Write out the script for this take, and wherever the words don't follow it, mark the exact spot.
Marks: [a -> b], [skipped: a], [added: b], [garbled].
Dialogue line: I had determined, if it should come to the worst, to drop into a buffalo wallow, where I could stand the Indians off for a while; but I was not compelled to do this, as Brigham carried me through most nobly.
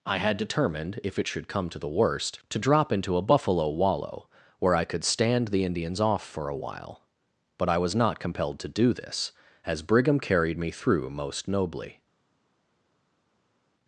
I had determined, if it should come to the worst, to drop into a buffalo wallow, where I could stand the Indians off for a while; but I was not compelled to do this, as Brigham carried me through most nobly.